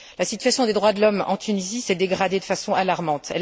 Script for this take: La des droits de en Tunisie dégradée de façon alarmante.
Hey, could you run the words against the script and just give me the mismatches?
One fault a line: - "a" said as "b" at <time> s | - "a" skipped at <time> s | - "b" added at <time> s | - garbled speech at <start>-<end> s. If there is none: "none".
- "situation" added at 0.2 s
- "l'homme" added at 1.0 s
- "s'est" added at 1.8 s